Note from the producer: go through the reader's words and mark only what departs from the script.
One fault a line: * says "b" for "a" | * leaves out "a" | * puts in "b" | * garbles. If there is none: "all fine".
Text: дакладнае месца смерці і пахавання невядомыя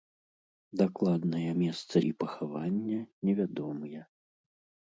* leaves out "смерці"